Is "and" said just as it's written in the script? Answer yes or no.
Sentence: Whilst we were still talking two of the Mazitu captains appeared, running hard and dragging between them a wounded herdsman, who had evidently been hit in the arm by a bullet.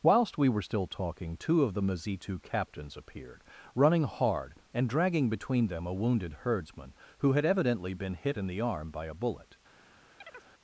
yes